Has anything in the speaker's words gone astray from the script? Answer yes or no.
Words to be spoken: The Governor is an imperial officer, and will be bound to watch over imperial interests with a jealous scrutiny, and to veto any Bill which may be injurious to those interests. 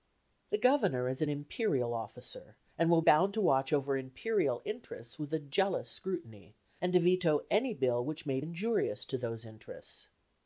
yes